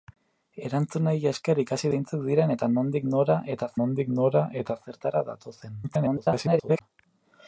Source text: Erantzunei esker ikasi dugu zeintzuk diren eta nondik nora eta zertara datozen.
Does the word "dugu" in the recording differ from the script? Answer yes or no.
yes